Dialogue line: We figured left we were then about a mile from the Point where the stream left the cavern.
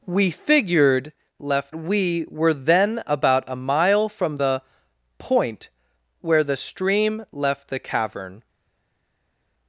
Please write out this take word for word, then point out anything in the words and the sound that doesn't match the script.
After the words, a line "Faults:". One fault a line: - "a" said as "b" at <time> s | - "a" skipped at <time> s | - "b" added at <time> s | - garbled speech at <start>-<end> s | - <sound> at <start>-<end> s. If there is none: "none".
We figured left we were then about a mile from the Point where the stream left the cavern.
Faults:
none